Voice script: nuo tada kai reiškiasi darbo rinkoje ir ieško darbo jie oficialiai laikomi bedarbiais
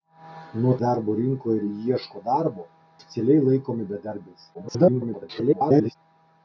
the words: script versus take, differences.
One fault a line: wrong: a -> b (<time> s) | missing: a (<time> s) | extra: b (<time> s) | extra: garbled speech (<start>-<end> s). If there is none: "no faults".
missing: tada kai reiškiasi (0.7 s)
missing: jie (2.7 s)
extra: garbled speech (4.5-6.0 s)